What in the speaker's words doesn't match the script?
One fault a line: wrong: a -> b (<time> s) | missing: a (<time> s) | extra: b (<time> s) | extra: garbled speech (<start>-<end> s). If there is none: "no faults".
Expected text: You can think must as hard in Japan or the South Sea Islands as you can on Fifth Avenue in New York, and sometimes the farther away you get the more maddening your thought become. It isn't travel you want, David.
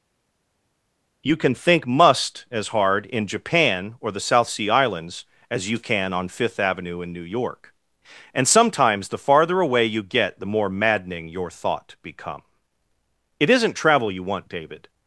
no faults